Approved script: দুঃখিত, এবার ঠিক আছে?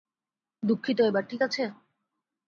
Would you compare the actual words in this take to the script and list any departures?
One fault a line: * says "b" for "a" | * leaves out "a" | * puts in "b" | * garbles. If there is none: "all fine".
all fine